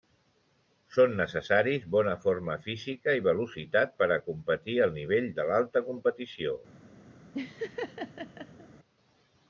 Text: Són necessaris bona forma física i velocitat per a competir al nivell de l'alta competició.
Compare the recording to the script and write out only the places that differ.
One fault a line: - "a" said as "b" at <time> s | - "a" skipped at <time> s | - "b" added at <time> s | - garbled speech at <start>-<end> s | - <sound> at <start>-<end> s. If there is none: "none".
- laugh at 7.3-8.7 s